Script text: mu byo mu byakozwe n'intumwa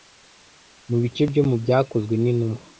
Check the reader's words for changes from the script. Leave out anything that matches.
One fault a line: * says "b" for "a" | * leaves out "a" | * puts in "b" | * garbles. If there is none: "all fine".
* puts in "bice"